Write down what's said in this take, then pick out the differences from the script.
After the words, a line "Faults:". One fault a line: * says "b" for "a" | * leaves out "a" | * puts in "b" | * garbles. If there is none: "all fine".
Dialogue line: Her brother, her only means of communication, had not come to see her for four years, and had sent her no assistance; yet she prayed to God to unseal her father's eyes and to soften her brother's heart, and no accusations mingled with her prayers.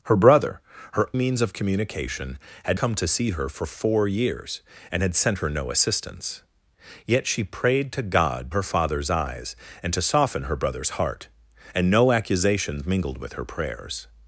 Her brother, her means of communication, had come to see her for four years, and had sent her no assistance; yet she prayed to God her father's eyes and to soften her brother's heart, and no accusations mingled with her prayers.
Faults:
* leaves out "only"
* leaves out "not"
* leaves out "to unseal"